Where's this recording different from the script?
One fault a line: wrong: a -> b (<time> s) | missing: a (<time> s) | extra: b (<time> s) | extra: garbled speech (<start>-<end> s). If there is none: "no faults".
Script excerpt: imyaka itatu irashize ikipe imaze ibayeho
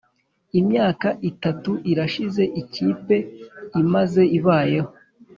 no faults